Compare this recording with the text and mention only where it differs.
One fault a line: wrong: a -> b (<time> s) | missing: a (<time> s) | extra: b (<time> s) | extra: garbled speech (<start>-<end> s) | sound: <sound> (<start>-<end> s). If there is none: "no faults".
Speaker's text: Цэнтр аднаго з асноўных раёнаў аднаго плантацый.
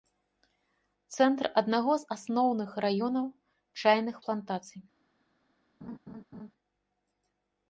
wrong: аднаго -> чайных (3.9 s)
sound: laugh (5.8-6.5 s)